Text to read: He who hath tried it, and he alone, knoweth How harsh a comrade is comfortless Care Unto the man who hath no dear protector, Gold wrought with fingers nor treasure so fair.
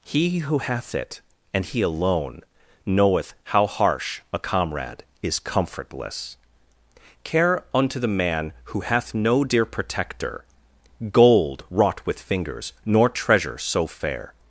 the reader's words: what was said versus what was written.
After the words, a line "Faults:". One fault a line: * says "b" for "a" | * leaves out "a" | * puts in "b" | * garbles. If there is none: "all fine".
He who hath it, and he alone, knoweth How harsh a comrade is comfortless Care Unto the man who hath no dear protector, Gold wrought with fingers nor treasure so fair.
Faults:
* leaves out "tried"